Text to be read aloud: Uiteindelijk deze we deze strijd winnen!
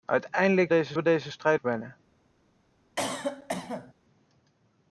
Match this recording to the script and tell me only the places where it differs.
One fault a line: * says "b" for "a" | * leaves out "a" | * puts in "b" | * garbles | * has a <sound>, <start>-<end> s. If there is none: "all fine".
* has a cough, 3.0-3.9 s